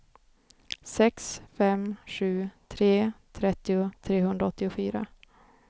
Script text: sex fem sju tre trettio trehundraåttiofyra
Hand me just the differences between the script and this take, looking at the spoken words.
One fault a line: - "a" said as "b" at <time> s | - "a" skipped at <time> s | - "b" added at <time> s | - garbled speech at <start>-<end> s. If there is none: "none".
none